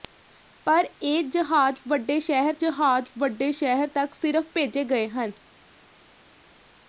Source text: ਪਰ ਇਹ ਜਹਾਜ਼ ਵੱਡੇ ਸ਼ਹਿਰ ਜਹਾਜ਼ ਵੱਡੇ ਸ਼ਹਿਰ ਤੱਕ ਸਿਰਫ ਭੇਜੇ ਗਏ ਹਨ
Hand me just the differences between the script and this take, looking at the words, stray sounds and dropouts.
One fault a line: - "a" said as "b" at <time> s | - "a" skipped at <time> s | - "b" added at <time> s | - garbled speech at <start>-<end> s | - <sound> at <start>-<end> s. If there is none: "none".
none